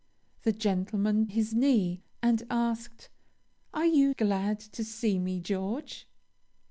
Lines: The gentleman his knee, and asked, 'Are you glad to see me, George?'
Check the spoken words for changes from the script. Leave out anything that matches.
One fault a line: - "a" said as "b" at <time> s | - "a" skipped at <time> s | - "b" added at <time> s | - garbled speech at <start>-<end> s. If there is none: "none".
none